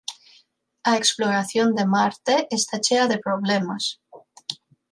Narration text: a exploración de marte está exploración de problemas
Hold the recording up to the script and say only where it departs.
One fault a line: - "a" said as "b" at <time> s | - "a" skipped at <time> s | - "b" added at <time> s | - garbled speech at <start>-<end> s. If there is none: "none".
- "exploración" said as "chea" at 2.8 s